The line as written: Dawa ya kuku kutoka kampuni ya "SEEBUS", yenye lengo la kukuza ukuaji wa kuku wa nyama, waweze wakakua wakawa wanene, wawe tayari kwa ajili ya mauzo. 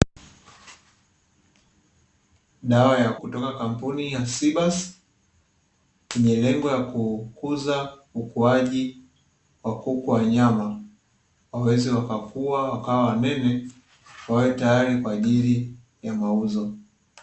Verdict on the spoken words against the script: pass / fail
fail